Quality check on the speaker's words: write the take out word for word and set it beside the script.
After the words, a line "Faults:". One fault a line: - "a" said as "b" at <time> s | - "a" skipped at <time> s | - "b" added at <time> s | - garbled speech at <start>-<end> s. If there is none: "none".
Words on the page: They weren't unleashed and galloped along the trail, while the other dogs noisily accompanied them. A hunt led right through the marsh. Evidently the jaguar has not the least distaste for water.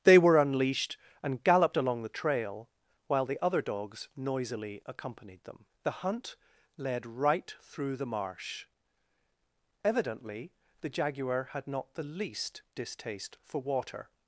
They were unleashed and galloped along the trail, while the other dogs noisily accompanied them. The hunt led right through the marsh. Evidently the jaguar had not the least distaste for water.
Faults:
- "weren't" said as "were" at 0.2 s
- "A" said as "The" at 5.8 s
- "has" said as "had" at 11.5 s